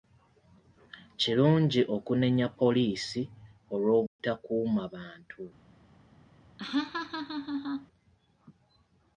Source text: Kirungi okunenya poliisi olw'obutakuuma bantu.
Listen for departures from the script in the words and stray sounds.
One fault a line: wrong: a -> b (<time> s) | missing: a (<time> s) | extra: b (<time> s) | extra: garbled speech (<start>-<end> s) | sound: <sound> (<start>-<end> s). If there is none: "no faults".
sound: dropout (4.1-4.2 s)
sound: laugh (6.6-7.9 s)